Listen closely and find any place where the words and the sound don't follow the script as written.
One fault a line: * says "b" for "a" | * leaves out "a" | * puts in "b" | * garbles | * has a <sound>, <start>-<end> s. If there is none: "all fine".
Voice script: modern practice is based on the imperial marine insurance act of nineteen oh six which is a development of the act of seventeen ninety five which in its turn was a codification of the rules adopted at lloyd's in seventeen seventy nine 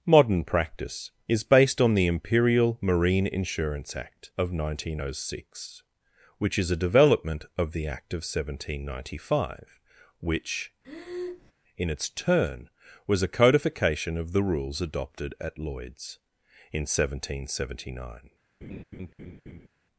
* has a breath, 10.8-11.5 s
* has a laugh, 18.6-19.7 s